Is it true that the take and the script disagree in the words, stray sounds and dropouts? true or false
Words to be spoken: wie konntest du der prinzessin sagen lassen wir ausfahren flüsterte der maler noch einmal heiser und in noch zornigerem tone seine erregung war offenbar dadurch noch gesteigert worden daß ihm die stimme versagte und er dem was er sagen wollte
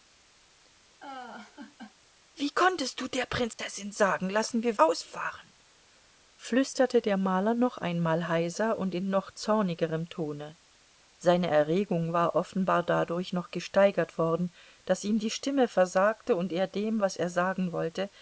true